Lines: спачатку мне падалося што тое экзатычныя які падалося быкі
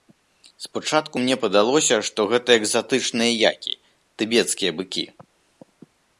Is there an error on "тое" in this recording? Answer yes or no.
yes